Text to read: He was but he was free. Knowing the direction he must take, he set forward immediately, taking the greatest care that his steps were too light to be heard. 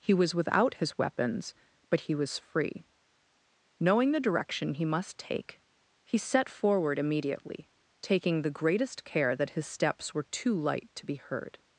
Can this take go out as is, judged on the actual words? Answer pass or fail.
fail